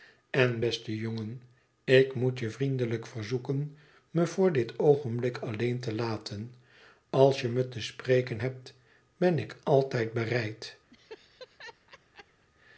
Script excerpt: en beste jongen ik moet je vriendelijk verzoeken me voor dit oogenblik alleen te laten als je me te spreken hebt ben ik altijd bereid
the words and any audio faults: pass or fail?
fail